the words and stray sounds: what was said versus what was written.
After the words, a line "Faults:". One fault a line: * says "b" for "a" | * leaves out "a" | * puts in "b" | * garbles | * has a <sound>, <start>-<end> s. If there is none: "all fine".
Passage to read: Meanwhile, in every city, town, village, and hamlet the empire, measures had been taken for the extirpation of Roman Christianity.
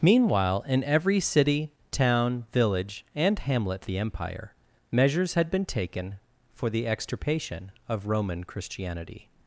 Meanwhile, in every city, town, village, and hamlet the empire, measures had been taken for the extirpation of Roman Christianity.
Faults:
all fine